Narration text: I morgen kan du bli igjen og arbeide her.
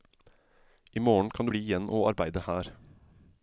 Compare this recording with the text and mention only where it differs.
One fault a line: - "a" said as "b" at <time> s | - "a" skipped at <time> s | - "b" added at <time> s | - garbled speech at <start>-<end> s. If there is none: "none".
none